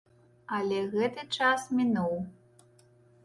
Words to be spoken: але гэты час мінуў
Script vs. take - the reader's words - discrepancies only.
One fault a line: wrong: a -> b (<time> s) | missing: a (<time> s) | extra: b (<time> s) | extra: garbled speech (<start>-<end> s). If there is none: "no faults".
no faults